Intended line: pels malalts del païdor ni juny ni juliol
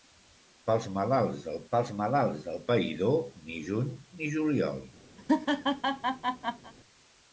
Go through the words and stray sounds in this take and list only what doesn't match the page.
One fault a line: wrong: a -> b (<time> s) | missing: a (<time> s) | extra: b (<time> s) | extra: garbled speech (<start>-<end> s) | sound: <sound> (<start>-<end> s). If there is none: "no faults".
extra: pels malalts del (1.7 s)
sound: laugh (5.2-6.7 s)